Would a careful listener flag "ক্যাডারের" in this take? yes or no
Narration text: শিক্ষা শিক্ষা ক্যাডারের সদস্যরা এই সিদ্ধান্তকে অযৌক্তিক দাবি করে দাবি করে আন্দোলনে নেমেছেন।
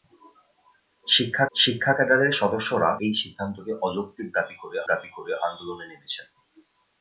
no